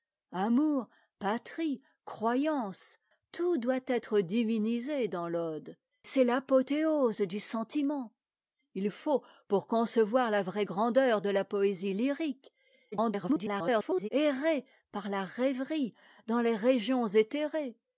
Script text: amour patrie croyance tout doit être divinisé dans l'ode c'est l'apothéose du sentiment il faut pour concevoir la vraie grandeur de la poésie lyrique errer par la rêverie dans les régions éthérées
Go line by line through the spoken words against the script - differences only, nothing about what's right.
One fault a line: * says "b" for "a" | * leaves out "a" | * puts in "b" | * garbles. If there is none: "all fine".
* garbles